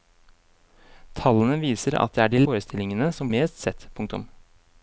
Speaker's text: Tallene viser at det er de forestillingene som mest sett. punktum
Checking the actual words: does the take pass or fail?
pass